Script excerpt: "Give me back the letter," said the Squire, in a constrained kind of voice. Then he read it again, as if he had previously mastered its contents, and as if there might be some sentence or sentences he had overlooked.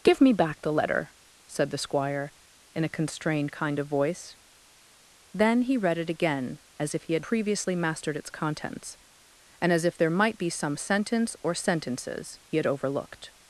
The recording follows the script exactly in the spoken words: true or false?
true